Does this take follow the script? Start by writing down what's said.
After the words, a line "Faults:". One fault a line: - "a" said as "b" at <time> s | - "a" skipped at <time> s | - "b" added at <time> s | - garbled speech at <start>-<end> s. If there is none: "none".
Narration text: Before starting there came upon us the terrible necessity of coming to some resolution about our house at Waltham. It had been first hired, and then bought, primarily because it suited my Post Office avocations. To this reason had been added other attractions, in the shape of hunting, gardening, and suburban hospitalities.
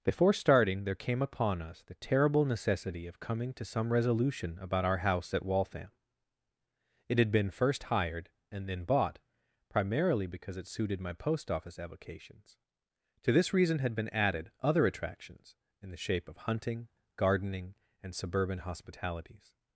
Before starting there came upon us the terrible necessity of coming to some resolution about our house at Waltham. It had been first hired, and then bought, primarily because it suited my Post Office avocations. To this reason had been added other attractions, in the shape of hunting, gardening, and suburban hospitalities.
Faults:
none